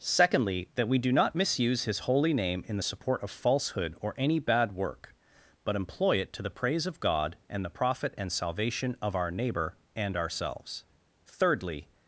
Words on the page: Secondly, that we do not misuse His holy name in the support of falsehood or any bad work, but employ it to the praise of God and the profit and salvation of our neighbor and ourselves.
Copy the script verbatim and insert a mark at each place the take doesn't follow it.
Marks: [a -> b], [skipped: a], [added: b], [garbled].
Secondly, that we do not misuse His holy name in the support of falsehood or any bad work, but employ it to the praise of God and the profit and salvation of our neighbor and ourselves. [added: Thirdly]